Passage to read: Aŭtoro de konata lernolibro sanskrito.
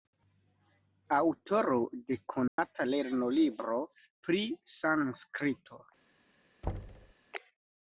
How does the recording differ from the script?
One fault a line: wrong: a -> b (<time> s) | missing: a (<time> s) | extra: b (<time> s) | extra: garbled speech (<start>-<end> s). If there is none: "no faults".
extra: pri (4.3 s)